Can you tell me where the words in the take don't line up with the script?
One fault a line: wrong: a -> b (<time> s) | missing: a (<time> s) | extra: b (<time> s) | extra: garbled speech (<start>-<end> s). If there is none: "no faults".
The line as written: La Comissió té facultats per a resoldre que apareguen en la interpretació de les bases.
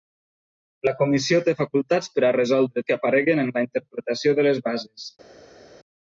no faults